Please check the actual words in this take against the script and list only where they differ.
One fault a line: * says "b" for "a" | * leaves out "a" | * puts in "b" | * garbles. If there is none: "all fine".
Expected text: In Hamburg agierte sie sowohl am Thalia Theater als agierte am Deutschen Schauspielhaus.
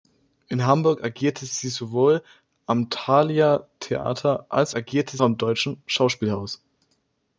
all fine